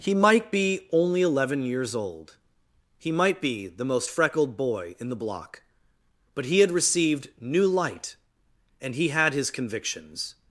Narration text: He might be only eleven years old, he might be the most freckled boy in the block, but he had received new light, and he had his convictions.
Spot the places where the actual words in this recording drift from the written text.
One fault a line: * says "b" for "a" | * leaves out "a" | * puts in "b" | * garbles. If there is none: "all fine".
all fine